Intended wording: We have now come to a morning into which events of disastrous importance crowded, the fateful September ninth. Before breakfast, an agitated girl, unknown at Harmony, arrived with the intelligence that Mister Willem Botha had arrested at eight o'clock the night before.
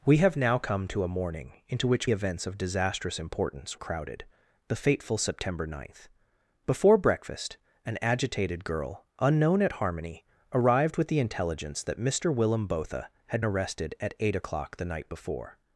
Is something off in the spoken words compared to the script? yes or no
no